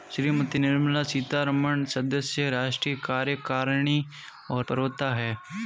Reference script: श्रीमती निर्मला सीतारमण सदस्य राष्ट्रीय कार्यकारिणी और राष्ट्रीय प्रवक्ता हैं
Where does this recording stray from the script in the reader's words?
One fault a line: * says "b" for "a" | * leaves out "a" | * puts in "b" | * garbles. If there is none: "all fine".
* leaves out "राष्ट्रीय"